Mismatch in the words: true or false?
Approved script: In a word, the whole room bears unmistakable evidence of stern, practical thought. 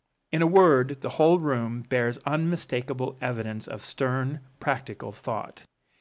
false